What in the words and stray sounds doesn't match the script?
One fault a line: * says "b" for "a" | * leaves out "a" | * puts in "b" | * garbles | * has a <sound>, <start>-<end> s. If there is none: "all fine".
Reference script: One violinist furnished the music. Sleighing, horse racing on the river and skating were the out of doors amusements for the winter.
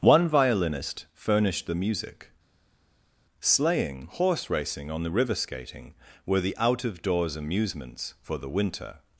* leaves out "and"